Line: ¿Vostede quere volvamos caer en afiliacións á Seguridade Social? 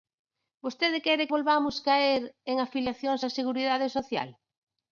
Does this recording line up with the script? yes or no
yes